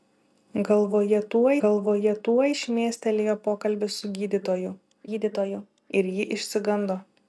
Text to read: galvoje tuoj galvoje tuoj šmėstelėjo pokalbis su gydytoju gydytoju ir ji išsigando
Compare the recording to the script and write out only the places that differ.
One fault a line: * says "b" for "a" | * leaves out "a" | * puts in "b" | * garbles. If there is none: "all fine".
all fine